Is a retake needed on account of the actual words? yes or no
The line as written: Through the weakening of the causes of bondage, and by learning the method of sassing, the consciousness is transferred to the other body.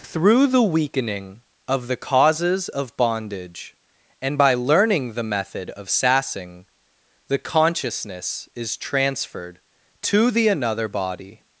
yes